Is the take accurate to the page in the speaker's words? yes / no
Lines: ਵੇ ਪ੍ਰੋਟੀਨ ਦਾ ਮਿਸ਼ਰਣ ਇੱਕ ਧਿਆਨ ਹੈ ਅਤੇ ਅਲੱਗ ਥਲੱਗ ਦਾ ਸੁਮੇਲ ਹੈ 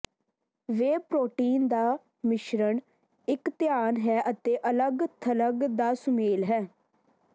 yes